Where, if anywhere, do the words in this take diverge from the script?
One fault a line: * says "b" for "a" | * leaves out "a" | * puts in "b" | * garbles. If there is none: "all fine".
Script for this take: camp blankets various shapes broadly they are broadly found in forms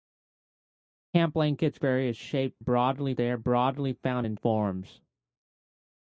all fine